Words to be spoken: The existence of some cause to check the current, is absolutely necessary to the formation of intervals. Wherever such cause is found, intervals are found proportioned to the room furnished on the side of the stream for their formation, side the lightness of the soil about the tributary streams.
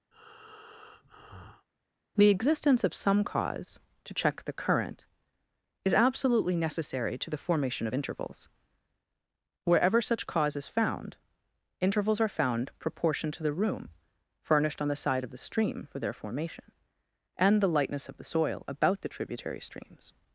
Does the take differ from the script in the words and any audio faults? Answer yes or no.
yes